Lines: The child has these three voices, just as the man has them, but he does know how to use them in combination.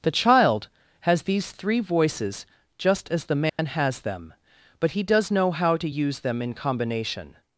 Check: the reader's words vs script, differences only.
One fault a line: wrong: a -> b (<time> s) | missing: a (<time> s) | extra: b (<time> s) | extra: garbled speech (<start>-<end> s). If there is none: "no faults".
no faults